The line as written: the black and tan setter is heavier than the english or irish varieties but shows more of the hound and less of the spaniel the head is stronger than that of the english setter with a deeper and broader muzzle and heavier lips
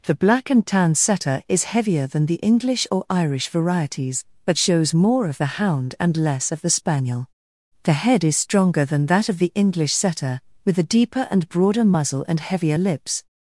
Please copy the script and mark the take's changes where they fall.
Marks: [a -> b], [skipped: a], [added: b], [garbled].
the black and tan setter is heavier than the english or irish varieties but shows more of the hound and less of the spaniel the head is stronger than that of the english setter with a deeper and broader muzzle and heavier lips